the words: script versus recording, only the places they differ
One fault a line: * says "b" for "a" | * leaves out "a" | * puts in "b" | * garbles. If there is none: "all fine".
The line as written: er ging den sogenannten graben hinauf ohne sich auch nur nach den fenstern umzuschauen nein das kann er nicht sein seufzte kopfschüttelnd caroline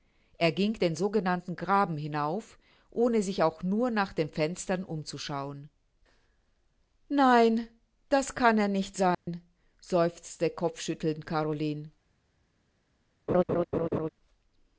all fine